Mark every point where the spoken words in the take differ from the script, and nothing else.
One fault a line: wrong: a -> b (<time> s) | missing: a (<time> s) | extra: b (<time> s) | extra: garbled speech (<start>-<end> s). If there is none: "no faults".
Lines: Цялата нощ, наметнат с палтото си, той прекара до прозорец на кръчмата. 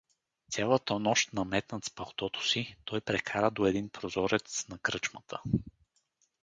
extra: един (3.6 s)